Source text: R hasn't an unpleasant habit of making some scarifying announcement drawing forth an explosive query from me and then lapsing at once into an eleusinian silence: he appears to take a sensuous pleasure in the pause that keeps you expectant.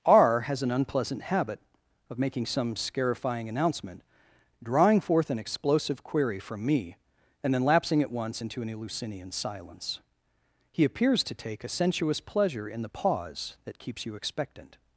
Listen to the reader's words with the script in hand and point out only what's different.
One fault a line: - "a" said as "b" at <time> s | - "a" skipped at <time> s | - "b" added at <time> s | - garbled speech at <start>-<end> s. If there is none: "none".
- "hasn't" said as "has" at 0.4 s